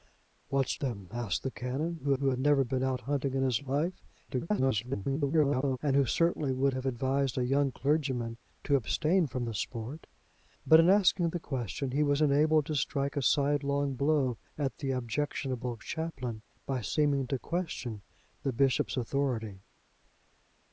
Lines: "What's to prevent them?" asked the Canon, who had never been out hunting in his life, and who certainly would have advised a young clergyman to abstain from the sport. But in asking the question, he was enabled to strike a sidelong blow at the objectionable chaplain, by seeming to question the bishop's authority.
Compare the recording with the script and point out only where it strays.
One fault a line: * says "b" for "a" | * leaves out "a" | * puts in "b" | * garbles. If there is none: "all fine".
* leaves out "to prevent"
* puts in "who"
* garbles